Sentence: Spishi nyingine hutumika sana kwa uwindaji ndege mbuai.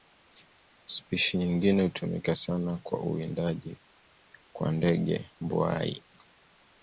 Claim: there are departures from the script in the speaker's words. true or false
true